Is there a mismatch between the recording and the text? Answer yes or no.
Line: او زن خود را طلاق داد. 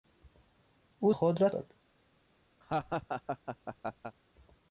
yes